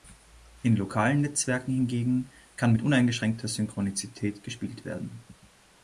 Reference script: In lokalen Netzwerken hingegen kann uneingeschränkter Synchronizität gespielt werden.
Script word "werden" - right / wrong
right